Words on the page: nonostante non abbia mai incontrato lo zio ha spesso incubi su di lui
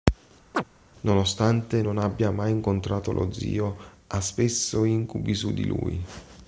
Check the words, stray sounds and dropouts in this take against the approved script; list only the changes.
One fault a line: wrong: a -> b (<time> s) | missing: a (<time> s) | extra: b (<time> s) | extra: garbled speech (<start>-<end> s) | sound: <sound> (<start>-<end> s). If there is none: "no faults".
sound: chirp (0.5-0.6 s)